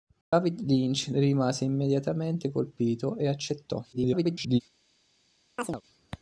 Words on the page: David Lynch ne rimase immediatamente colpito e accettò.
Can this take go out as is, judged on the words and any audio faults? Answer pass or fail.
fail